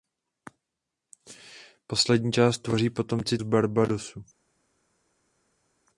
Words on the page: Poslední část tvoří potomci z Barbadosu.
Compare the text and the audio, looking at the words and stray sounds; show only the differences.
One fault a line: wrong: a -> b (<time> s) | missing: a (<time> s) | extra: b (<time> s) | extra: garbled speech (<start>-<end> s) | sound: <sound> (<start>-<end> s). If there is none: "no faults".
no faults